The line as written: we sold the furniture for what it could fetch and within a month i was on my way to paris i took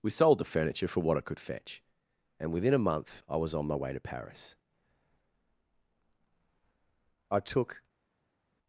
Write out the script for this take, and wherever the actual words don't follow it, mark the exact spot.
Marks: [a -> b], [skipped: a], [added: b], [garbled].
we sold the furniture for what it could fetch and within a month i was on my way to paris i took